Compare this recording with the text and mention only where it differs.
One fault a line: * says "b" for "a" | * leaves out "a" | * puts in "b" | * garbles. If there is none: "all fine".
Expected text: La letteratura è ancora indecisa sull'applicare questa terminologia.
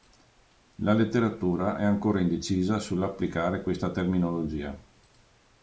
all fine